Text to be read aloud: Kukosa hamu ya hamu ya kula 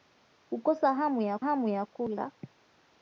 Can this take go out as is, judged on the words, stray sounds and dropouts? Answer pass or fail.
pass